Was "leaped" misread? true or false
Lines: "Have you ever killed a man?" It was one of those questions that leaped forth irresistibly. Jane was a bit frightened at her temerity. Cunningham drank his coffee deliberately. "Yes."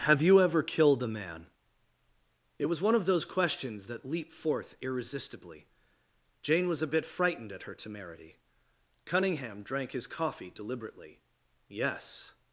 true